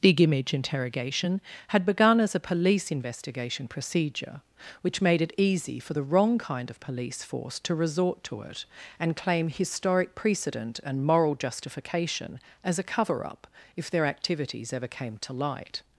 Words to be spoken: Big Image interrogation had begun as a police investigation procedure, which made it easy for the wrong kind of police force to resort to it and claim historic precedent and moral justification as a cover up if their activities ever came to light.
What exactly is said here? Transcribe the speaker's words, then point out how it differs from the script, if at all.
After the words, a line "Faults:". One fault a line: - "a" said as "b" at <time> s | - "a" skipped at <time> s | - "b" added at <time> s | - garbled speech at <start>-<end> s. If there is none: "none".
Big Image interrogation had begun as a police investigation procedure, which made it easy for the wrong kind of police force to resort to it and claim historic precedent and moral justification as a cover up if their activities ever came to light.
Faults:
none